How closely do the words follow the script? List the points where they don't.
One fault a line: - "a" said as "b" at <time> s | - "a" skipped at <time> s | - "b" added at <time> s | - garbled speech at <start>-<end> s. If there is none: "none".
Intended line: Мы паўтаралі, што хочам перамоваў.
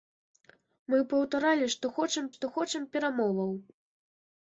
- "што хочам" added at 2.3 s